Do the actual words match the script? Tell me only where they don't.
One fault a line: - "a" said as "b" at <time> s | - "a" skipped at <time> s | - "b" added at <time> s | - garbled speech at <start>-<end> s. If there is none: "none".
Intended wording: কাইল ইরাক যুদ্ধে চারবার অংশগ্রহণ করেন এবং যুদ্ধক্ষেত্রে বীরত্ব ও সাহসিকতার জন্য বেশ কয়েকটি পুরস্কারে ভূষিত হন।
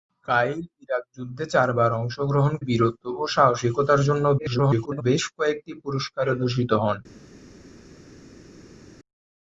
- "করেন এবং যুদ্ধক্ষেত্রে" skipped at 2.5 s
- garbled speech at 4.4-5.0 s